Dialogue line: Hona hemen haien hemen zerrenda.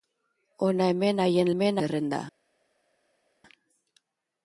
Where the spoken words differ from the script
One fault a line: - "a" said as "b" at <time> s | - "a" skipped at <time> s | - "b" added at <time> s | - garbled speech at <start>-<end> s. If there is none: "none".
none